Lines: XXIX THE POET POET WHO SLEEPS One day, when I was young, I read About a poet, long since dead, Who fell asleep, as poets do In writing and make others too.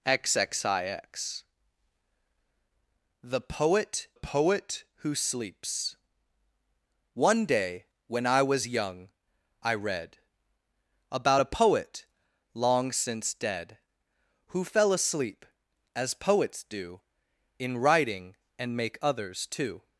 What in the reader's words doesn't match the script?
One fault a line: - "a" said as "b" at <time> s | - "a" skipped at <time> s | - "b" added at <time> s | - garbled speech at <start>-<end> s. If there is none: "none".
none